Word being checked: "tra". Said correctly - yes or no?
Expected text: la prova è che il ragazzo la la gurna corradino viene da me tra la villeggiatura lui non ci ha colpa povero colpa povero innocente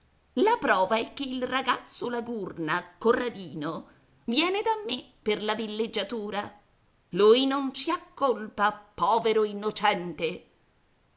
no